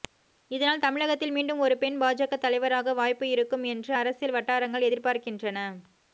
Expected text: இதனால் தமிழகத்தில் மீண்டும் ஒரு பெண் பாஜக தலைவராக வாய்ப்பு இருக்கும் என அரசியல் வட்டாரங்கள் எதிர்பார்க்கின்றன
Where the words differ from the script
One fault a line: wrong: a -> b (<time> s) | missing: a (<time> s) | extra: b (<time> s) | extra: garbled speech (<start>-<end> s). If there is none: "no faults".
wrong: என -> என்று (3.7 s)